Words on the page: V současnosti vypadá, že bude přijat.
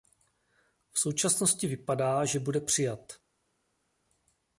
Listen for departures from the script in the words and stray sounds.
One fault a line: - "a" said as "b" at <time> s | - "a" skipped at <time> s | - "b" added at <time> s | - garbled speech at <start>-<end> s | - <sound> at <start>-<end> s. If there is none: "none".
none